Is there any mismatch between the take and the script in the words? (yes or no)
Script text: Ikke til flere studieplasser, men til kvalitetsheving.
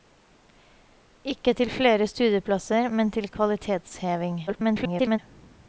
yes